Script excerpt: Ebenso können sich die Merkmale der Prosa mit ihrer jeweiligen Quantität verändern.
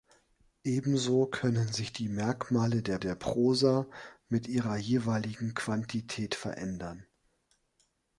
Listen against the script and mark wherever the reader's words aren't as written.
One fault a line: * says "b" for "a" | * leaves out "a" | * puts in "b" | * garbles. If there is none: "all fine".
* puts in "der"